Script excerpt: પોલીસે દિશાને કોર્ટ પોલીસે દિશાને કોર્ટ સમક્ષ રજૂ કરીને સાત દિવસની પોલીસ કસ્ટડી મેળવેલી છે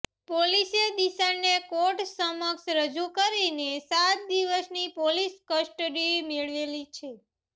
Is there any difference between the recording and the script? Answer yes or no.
yes